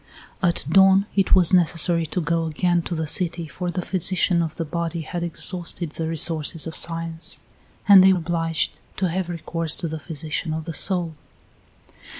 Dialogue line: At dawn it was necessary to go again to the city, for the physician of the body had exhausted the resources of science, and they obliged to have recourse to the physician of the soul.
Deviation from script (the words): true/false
false